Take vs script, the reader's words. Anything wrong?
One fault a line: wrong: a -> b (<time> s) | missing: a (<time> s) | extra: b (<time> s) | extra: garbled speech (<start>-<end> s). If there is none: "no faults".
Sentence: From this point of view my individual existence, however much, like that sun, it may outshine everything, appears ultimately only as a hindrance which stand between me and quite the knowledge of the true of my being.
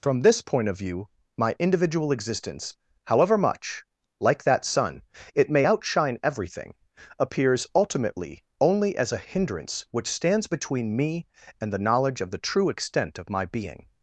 wrong: stand -> stands (10.1 s)
missing: quite (11.7 s)
extra: extent (12.7 s)